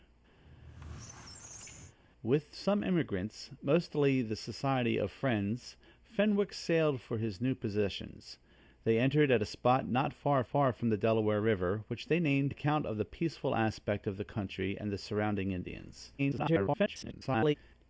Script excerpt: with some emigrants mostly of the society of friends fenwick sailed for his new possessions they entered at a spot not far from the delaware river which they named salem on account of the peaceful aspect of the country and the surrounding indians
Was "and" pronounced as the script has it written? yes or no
yes